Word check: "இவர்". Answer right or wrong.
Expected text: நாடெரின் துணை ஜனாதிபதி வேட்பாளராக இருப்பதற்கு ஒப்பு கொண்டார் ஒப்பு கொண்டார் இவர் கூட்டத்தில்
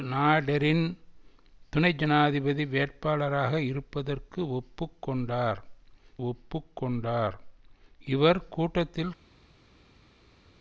right